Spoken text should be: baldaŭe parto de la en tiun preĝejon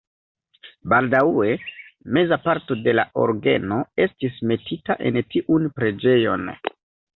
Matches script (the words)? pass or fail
fail